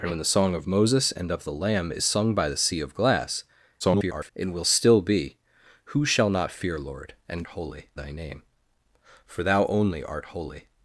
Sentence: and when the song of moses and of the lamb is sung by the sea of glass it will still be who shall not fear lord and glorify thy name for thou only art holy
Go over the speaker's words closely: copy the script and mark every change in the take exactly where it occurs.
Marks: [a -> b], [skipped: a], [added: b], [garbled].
and when the song of moses and of the lamb is sung by the sea of glass [garbled] it will still be who shall not fear lord and [glorify -> holy] thy name for thou only art holy